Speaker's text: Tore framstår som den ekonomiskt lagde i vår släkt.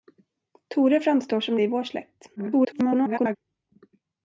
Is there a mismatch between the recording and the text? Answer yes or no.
yes